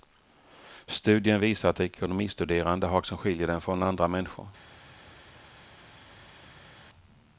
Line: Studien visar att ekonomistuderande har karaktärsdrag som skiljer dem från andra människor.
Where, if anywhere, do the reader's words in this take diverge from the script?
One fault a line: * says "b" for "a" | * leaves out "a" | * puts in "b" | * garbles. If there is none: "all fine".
* leaves out "karaktärsdrag"